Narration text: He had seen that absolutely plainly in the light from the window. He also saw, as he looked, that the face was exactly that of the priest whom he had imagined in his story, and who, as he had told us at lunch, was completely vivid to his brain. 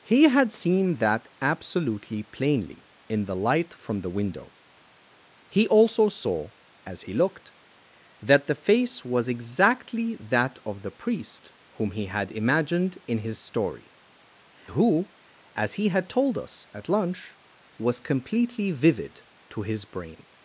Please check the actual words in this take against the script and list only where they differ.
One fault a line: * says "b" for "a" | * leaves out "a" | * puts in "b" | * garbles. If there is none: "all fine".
* leaves out "and"